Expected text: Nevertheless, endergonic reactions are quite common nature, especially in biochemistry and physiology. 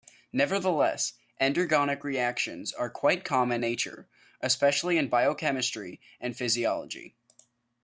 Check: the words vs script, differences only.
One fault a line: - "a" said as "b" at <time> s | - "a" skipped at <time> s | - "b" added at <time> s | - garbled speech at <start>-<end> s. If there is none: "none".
none